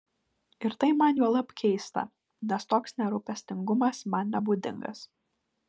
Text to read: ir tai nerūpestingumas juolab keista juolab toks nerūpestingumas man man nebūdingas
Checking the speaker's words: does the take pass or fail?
fail